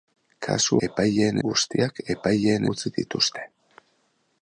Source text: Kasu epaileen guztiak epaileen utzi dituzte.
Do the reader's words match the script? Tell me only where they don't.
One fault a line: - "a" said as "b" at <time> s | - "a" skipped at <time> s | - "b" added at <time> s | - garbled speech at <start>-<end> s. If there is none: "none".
none